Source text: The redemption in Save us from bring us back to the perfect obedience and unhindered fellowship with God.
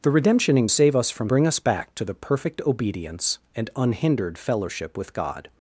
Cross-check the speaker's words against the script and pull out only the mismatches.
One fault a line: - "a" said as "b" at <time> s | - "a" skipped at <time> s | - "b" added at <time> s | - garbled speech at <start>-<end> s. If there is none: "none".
none